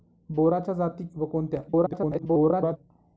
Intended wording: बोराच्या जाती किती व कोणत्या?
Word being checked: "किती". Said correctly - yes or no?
no